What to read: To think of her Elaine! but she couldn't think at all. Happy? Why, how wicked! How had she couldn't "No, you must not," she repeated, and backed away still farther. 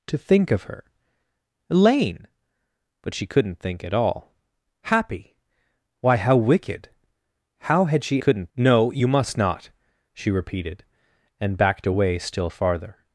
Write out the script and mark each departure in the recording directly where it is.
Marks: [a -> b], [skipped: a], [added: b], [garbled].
To think of her Elaine! but she couldn't think at all. Happy? Why, how wicked! How had she couldn't "No, you must not," she repeated, and backed away still farther.